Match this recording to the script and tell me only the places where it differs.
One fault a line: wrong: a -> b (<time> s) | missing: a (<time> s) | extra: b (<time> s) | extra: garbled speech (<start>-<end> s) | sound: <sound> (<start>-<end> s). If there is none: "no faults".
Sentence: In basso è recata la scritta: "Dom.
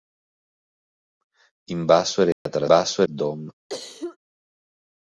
sound: dropout (2.3-2.5 s)
wrong: scritta -> basso (2.7 s)
sound: cough (3.7-4.2 s)